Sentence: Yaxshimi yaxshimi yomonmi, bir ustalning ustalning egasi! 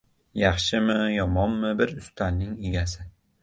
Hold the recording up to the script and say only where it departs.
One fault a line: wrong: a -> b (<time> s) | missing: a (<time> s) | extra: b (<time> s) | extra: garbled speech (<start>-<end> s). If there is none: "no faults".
missing: yaxshimi (0.9 s)
missing: ustalning (2.6 s)